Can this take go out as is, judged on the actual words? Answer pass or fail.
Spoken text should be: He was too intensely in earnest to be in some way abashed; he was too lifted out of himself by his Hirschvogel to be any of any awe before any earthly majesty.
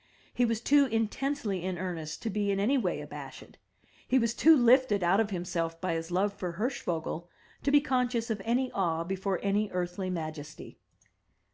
fail